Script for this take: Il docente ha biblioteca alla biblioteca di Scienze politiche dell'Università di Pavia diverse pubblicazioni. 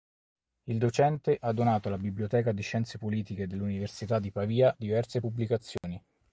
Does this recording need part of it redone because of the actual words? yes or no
yes